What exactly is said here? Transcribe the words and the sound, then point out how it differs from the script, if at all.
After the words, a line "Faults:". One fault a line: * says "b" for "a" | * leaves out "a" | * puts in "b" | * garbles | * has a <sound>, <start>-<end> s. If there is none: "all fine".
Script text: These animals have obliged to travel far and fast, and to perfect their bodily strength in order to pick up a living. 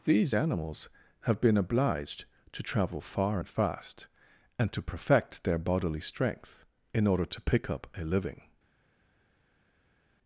These animals have been obliged to travel far and fast, and to perfect their bodily strength in order to pick up a living.
Faults:
* puts in "been"